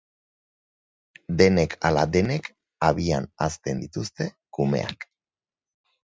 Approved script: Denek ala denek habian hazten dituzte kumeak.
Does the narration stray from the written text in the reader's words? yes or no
no